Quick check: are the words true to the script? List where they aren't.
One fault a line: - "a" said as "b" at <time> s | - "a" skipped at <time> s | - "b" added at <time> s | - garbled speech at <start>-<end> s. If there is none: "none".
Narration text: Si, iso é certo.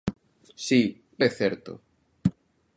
- "iso" skipped at 0.8 s